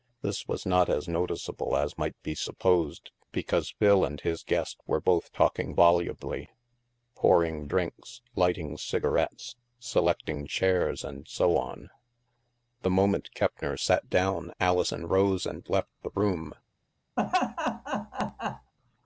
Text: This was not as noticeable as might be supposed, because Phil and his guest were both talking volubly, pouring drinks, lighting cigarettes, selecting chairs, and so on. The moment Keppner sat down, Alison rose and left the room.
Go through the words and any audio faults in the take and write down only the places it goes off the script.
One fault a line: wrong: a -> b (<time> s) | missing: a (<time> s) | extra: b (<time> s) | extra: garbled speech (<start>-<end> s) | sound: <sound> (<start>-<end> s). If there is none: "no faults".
sound: laugh (17.2-18.7 s)